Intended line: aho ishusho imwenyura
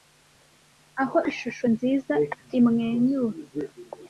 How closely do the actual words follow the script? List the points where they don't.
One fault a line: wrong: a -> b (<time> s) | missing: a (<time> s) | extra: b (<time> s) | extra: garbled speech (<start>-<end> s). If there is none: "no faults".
extra: nziza (1.7 s)